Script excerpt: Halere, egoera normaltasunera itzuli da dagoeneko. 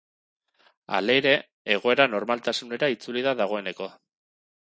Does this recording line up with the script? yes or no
yes